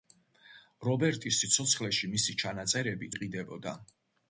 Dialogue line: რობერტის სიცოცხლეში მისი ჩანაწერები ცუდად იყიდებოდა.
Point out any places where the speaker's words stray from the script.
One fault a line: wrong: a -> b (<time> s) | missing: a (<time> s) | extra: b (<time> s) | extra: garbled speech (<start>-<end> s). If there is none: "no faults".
missing: ცუდად (3.1 s)